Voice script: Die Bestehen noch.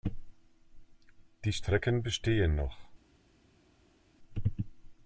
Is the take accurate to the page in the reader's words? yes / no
no